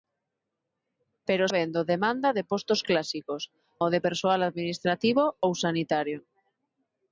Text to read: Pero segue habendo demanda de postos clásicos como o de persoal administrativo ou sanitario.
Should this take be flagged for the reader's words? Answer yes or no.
yes